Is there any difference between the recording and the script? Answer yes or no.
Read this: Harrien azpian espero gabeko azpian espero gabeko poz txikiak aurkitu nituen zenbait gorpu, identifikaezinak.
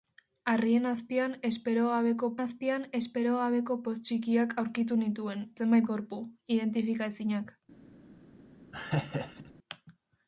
no